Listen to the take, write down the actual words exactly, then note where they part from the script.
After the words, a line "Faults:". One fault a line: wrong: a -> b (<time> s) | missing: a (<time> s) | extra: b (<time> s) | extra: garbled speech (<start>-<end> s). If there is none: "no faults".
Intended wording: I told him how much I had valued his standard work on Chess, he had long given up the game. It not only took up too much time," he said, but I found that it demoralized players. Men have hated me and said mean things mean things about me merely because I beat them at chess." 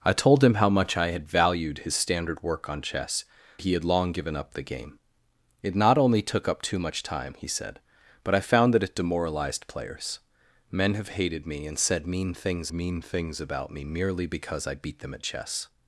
I told him how much I had valued his standard work on Chess, he had long given up the game. It not only took up too much time," he said, but I found that it demoralized players. Men have hated me and said mean things mean things about me merely because I beat them at chess."
Faults:
no faults